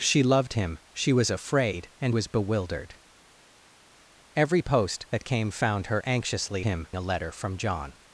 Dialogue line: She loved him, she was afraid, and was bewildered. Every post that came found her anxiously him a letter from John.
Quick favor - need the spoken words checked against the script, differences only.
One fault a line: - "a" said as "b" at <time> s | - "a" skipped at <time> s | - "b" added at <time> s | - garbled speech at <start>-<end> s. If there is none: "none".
none